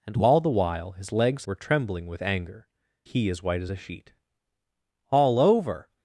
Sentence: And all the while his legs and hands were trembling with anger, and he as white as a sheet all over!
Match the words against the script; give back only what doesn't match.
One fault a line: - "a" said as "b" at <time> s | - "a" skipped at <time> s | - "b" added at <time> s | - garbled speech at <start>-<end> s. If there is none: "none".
- "and hands" skipped at 1.4 s
- "and" skipped at 2.7 s